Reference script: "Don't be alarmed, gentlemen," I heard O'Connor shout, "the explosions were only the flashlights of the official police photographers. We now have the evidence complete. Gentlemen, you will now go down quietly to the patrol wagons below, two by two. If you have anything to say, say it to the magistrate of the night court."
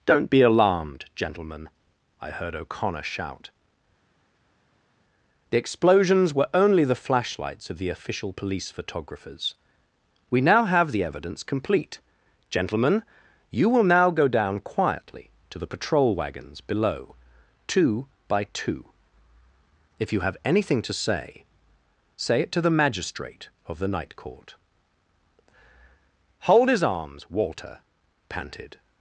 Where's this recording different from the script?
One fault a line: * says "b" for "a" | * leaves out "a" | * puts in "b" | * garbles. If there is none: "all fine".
* puts in "Hold his arms Walter panted"